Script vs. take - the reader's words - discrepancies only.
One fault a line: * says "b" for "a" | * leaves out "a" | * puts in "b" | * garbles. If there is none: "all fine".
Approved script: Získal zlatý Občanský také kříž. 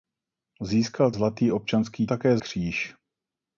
all fine